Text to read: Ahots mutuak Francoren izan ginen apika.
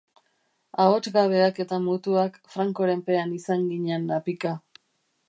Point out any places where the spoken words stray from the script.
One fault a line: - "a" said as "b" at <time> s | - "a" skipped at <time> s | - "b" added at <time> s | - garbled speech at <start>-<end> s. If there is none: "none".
- "gabeak eta" added at 1.2 s
- "pean" added at 3.1 s